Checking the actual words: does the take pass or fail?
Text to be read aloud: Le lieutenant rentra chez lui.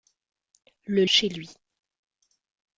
fail